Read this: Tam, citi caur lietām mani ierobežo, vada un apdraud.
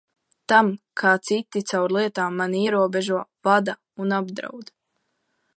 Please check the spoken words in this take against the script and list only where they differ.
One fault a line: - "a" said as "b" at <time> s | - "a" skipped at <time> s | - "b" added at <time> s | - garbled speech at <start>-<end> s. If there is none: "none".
- "kā" added at 1.0 s